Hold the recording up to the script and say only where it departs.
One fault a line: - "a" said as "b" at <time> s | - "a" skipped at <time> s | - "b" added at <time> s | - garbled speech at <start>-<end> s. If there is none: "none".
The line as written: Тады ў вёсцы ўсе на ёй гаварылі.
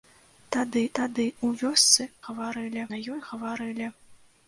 - "тады" added at 1.0 s
- "ўсе" said as "гаварылі" at 2.3 s